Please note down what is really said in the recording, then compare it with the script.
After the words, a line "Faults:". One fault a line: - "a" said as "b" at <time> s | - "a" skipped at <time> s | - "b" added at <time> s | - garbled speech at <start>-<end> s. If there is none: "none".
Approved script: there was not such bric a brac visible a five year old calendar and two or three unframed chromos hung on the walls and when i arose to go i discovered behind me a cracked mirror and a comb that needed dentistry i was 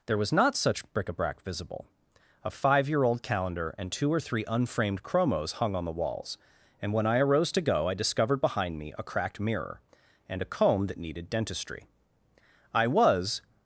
there was not such bric a brac visible a five year old calendar and two or three unframed chromos hung on the walls and when i arose to go i discovered behind me a cracked mirror and a comb that needed dentistry i was
Faults:
none